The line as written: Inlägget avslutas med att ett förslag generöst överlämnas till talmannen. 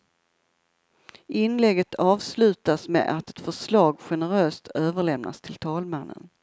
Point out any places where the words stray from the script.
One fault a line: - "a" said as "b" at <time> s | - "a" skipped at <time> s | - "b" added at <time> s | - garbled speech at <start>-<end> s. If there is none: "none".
none